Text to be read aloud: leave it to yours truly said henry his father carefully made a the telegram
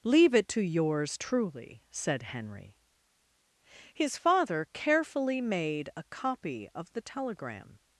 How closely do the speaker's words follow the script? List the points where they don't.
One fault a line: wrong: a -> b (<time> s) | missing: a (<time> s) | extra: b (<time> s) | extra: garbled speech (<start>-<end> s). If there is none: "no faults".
extra: copy of (6.0 s)